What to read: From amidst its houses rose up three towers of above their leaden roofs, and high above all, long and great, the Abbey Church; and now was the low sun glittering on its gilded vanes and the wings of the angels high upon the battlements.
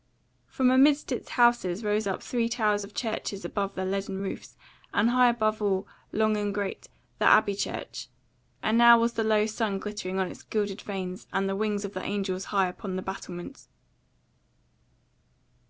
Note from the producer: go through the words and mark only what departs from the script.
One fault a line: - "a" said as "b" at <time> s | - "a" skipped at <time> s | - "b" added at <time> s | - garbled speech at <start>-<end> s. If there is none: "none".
- "churches" added at 2.9 s